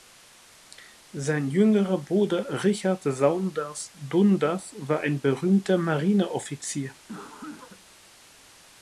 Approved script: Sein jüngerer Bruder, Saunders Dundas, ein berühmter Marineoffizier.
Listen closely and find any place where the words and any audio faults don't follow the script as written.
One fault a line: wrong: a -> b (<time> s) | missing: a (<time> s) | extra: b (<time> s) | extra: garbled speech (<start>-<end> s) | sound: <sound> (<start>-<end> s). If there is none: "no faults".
extra: Richard (2.6 s)
extra: war (4.8 s)
sound: cough (7.1-7.8 s)